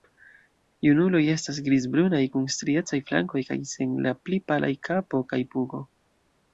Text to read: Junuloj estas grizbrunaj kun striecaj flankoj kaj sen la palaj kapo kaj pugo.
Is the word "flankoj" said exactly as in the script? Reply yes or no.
yes